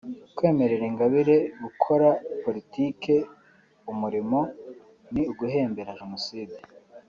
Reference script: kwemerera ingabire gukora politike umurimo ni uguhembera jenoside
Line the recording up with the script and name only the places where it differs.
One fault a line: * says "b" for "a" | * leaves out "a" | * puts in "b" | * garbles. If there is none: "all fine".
all fine